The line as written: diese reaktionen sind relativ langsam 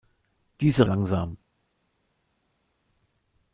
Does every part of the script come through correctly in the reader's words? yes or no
no